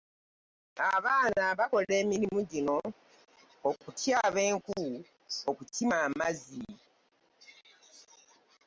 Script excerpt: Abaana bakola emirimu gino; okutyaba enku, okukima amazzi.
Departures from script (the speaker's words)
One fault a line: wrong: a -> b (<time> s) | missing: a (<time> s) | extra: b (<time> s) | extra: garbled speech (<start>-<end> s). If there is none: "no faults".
no faults